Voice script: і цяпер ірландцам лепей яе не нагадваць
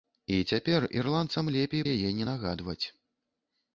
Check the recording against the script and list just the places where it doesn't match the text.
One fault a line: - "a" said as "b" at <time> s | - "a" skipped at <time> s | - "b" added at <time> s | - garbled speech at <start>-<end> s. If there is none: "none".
none